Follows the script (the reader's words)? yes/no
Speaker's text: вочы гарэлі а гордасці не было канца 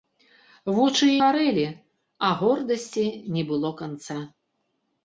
yes